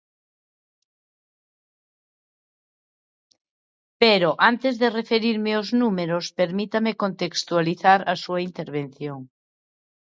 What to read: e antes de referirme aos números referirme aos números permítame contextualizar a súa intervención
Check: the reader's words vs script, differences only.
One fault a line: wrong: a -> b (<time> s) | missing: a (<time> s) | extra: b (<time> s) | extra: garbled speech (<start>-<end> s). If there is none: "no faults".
wrong: e -> pero (4.0 s)
missing: referirme aos números (6.2 s)